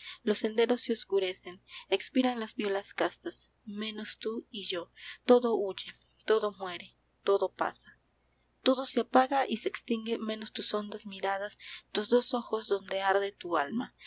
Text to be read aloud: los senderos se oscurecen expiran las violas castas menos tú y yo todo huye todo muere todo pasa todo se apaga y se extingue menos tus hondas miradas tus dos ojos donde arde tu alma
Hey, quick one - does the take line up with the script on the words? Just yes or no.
yes